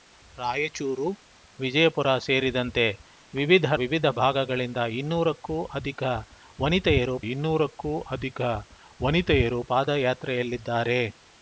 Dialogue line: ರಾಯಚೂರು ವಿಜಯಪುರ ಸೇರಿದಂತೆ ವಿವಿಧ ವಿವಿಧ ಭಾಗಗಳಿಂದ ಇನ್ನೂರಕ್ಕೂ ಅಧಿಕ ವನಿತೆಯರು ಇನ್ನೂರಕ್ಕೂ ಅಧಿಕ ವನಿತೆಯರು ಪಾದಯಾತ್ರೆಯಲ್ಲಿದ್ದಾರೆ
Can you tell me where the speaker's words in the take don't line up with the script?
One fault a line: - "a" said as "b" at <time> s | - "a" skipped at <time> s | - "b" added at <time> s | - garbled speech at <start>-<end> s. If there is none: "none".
none